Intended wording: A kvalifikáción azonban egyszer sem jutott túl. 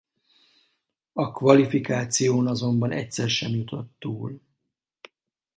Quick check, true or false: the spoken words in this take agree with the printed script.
true